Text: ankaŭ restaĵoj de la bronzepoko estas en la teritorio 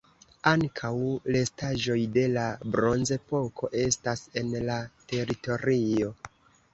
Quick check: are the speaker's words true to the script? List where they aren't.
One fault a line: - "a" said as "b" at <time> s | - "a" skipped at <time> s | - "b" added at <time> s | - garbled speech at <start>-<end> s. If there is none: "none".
none